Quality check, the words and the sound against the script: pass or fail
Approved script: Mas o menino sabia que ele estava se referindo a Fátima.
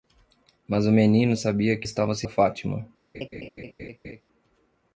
fail